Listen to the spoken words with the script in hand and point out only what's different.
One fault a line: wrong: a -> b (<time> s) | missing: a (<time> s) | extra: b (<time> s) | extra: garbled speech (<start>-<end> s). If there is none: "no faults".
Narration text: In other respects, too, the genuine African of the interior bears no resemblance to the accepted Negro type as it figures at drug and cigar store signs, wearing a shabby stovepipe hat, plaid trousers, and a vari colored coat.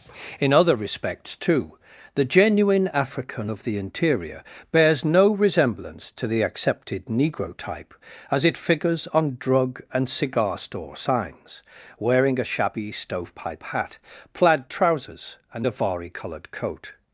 wrong: at -> on (9.1 s)